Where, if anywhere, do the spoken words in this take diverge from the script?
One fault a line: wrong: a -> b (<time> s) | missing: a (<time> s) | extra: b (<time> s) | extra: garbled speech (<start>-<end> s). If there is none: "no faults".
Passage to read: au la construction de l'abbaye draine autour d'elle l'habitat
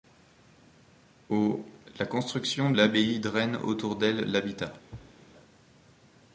missing: de (2.7 s)